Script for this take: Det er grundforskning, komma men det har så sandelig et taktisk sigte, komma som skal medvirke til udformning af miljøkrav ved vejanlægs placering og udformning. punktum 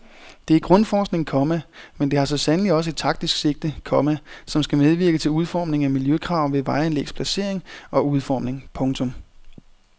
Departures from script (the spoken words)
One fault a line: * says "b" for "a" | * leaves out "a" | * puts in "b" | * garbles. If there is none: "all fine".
* puts in "også"